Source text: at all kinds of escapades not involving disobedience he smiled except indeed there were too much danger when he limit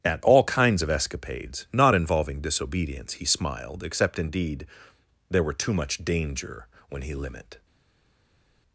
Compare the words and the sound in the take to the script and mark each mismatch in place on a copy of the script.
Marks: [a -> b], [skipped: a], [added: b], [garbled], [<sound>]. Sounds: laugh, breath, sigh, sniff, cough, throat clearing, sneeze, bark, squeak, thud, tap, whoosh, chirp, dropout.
at all kinds of escapades not involving disobedience he smiled except indeed there were too much danger when he limit